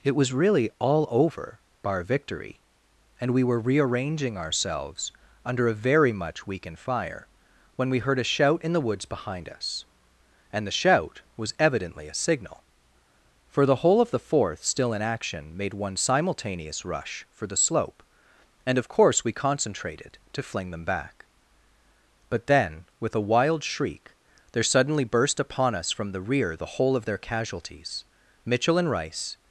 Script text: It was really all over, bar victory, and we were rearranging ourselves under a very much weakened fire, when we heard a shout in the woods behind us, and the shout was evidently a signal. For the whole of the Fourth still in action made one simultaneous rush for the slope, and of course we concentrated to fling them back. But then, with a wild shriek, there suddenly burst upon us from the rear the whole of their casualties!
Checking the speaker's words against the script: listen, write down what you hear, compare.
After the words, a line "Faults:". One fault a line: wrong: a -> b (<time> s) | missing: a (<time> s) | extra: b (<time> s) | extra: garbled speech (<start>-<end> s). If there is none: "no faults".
It was really all over, bar victory, and we were rearranging ourselves under a very much weakened fire, when we heard a shout in the woods behind us, and the shout was evidently a signal. For the whole of the Fourth still in action made one simultaneous rush for the slope, and of course we concentrated to fling them back. But then, with a wild shriek, there suddenly burst upon us from the rear the whole of their casualties! Mitchell and Rice
Faults:
extra: Mitchell and Rice (28.4 s)